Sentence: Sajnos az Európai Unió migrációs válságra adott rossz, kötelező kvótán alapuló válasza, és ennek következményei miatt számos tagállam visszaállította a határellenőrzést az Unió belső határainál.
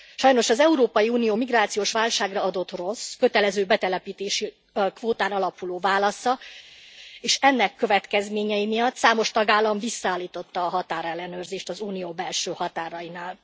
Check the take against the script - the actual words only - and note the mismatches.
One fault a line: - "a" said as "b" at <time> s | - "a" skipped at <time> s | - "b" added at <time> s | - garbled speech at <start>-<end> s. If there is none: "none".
- "betelepítési" added at 3.6 s